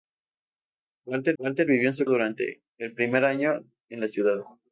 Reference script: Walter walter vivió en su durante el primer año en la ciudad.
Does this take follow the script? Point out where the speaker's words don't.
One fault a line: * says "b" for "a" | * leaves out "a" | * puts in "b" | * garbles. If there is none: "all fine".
all fine